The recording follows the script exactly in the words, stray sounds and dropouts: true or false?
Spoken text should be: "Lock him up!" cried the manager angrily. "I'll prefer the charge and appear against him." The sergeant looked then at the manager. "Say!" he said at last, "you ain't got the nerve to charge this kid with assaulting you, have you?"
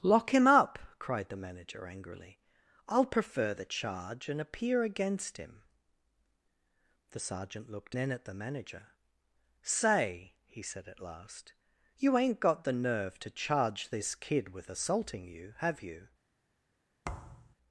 false